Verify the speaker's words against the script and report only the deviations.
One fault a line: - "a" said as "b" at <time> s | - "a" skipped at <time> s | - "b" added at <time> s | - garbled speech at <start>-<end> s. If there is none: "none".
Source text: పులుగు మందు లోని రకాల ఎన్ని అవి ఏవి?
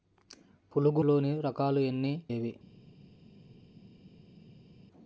- "మందు" skipped at 1.0 s
- "అవి" skipped at 2.1 s